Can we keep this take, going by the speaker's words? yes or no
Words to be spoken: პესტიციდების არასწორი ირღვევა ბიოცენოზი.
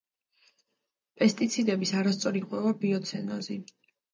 yes